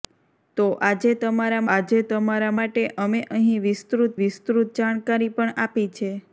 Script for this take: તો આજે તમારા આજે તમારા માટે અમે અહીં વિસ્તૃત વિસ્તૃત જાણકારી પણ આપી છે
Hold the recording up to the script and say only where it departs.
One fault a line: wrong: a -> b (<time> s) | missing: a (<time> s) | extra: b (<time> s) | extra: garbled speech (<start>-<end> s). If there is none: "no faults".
no faults